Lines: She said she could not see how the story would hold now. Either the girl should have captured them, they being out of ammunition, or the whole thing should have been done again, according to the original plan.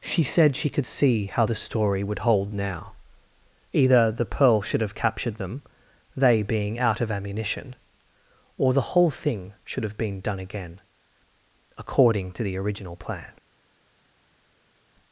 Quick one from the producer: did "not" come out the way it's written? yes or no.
no